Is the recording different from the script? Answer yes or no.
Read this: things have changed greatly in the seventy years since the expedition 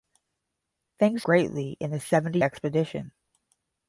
yes